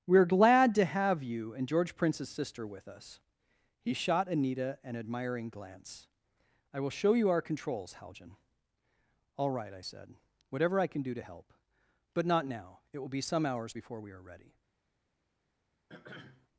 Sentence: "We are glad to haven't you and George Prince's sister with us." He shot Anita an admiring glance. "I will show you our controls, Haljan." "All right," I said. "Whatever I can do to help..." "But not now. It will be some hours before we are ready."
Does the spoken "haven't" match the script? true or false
false